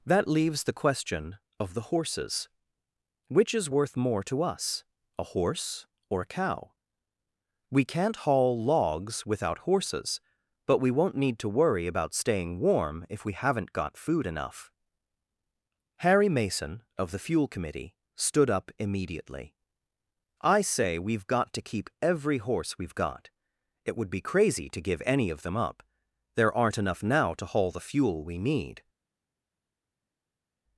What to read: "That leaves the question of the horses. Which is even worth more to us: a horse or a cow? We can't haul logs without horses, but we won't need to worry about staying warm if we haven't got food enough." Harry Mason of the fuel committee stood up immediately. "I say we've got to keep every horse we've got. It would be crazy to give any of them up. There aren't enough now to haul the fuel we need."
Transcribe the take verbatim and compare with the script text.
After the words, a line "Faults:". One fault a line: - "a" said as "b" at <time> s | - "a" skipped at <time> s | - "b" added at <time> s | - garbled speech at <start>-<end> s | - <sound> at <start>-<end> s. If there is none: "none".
"That leaves the question of the horses. Which is worth more to us: a horse or a cow? We can't haul logs without horses, but we won't need to worry about staying warm if we haven't got food enough." Harry Mason of the fuel committee stood up immediately. "I say we've got to keep every horse we've got. It would be crazy to give any of them up. There aren't enough now to haul the fuel we need."
Faults:
- "even" skipped at 3.7 s